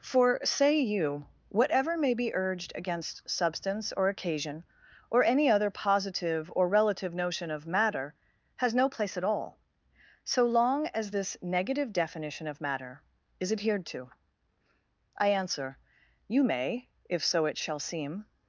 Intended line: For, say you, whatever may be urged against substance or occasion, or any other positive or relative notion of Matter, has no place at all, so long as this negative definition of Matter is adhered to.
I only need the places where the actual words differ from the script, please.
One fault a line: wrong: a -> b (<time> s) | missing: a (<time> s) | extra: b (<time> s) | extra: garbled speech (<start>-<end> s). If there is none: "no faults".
extra: I answer you may if so it shall seem (15.2 s)